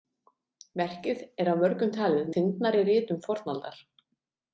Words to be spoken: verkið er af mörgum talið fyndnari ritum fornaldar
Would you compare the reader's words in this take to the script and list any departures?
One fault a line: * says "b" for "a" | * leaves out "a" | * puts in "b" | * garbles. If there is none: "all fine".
all fine